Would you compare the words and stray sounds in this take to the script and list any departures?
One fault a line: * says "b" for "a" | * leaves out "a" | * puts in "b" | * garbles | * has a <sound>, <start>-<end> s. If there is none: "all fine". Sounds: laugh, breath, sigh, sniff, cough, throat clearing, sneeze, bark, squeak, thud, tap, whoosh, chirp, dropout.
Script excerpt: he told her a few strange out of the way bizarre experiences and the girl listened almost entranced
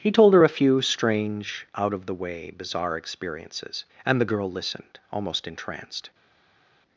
all fine